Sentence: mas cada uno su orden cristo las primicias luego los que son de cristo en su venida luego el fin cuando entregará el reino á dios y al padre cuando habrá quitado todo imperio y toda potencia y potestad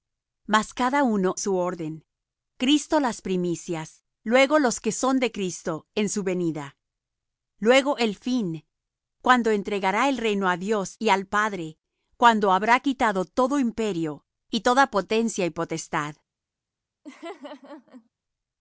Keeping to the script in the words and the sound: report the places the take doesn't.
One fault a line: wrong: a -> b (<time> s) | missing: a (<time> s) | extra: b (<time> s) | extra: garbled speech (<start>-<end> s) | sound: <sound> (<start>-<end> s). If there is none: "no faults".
sound: laugh (17.0-18.1 s)